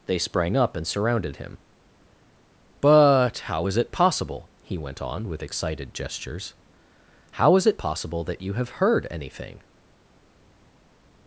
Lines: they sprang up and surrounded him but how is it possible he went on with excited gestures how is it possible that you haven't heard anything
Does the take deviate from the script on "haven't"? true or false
true